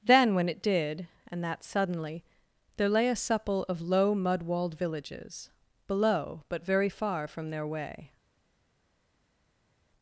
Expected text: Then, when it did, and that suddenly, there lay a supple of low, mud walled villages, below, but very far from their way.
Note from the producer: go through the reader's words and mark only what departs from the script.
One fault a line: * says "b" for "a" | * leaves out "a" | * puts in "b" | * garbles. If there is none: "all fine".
all fine